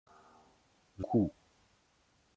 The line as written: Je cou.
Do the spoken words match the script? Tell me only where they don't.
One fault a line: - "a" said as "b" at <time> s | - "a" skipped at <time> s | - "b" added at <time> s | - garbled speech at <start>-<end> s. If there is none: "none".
none